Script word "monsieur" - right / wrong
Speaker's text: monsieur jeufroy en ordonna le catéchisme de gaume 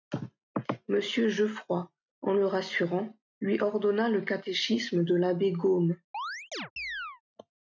right